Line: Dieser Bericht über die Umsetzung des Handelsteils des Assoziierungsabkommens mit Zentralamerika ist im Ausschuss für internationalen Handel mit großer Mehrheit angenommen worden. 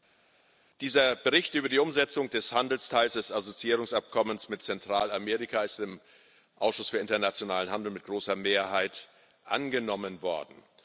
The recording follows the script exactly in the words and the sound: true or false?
true